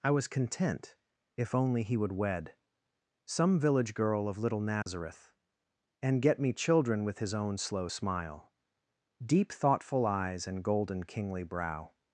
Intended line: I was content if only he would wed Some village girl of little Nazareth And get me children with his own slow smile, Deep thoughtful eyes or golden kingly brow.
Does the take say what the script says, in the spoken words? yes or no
no